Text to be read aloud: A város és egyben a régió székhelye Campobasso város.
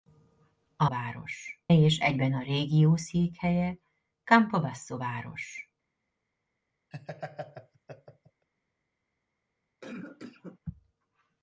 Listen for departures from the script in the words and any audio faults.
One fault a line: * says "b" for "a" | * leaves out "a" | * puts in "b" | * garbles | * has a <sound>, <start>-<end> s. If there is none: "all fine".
* has a laugh, 6.9-8.5 s
* has a cough, 9.8-10.6 s